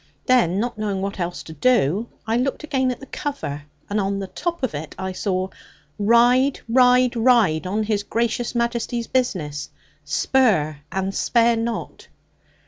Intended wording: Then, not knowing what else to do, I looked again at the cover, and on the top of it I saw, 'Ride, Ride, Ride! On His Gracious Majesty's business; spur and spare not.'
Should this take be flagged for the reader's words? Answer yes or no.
no